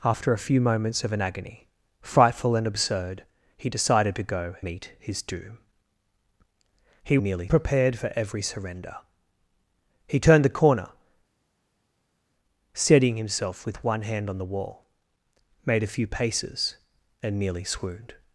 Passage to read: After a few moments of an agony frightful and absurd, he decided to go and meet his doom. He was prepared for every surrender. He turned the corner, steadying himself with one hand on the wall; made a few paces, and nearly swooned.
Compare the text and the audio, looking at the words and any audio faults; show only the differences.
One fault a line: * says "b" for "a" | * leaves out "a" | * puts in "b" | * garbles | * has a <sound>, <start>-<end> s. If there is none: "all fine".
* leaves out "and"
* says "nearly" for "was"